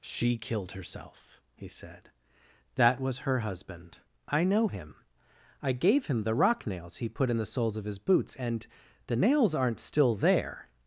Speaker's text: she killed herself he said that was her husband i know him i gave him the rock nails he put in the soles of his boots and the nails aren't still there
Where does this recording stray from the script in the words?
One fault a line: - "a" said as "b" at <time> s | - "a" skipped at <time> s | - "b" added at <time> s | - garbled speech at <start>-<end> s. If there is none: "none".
none